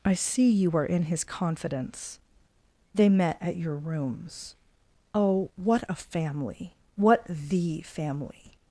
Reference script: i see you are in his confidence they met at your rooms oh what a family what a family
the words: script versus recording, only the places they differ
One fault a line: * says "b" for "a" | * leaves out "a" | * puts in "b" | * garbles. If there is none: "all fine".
* says "the" for "a"